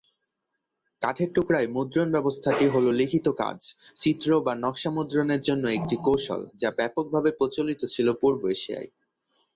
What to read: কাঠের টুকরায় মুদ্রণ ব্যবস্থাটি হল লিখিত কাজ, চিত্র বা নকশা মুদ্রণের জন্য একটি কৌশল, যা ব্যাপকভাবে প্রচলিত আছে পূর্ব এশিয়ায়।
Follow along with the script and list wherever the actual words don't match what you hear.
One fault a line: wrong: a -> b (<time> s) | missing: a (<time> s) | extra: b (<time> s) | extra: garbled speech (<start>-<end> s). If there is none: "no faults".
wrong: আছে -> ছিল (7.9 s)